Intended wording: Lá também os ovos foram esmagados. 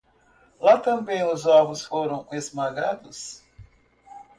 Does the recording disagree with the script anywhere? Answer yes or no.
no